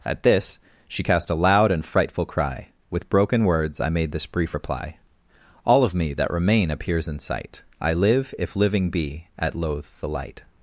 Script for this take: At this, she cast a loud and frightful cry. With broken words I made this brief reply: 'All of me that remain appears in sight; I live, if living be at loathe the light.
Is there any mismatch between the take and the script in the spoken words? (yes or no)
no